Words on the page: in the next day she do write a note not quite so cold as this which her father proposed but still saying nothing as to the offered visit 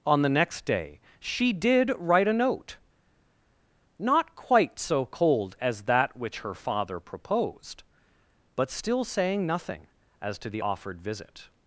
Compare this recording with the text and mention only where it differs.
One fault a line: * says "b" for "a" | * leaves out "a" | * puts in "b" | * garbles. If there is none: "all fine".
* says "on" for "in"
* says "did" for "do"
* says "that" for "this"